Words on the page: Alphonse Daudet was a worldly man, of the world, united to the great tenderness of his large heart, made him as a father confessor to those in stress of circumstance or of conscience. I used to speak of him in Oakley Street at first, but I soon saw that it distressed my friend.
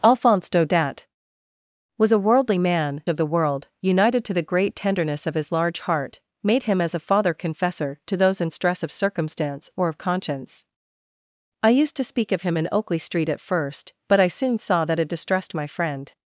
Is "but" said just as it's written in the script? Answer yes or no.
yes